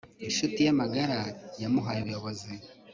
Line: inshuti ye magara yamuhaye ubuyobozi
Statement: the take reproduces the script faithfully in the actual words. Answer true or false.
true